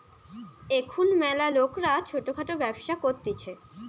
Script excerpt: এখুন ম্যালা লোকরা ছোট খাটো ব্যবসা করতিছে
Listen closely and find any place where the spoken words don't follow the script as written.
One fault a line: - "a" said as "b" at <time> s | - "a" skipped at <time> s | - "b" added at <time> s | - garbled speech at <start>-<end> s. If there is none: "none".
none